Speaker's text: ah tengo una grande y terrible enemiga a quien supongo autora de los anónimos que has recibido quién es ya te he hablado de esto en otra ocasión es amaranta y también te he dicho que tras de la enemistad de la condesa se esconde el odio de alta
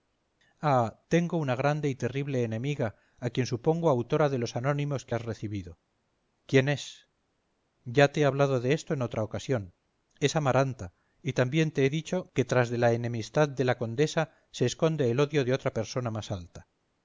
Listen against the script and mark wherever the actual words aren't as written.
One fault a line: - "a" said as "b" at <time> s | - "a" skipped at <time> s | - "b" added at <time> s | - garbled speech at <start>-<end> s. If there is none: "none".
- "otra persona más" added at 15.5 s